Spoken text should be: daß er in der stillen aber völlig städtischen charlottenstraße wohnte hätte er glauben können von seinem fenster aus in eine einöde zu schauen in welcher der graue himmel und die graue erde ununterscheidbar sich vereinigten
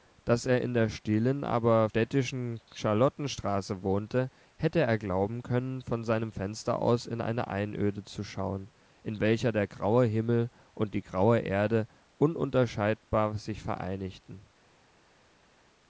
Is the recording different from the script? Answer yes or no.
yes